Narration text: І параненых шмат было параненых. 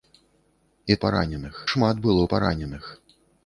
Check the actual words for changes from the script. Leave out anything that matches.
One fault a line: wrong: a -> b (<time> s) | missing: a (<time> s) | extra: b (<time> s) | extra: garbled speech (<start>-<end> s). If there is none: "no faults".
no faults